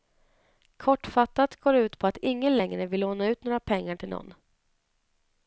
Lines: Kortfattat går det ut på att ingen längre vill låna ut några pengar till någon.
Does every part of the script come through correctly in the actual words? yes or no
yes